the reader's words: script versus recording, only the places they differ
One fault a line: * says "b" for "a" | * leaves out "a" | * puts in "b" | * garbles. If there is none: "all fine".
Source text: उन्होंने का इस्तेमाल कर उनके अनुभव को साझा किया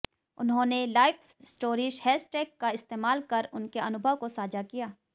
* puts in "लाइफ स्टोरीज हैशटैग"